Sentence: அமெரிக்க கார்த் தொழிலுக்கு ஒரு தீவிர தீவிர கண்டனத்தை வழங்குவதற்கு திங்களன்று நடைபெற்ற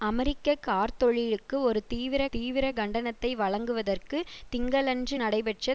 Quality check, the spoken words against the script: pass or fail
pass